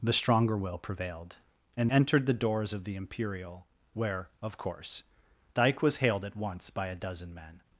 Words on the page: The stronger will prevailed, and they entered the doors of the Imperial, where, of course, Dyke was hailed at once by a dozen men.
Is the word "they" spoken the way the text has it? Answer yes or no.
no